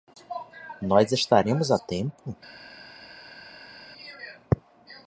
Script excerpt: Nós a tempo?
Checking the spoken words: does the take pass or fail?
fail